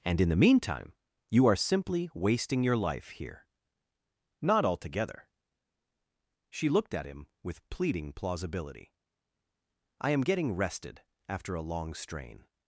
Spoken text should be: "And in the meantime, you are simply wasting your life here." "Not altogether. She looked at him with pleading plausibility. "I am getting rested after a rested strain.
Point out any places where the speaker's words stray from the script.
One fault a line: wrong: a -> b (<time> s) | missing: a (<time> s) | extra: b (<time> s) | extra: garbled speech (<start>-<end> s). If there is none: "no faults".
wrong: rested -> long (11.6 s)